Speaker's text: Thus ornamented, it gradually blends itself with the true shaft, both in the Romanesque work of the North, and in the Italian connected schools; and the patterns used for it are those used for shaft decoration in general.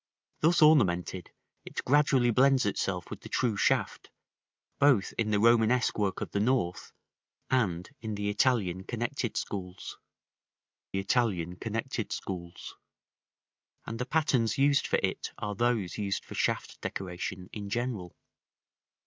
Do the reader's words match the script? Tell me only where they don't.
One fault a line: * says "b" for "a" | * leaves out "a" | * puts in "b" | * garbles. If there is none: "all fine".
* puts in "Italian connected schools"